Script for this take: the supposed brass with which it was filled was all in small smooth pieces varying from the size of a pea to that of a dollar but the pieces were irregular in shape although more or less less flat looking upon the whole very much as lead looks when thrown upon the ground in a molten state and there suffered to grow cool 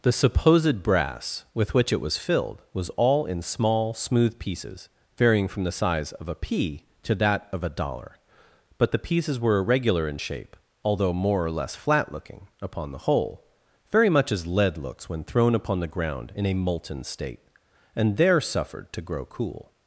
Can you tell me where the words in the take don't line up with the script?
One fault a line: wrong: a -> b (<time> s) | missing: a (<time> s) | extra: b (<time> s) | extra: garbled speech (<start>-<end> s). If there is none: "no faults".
missing: less (11.8 s)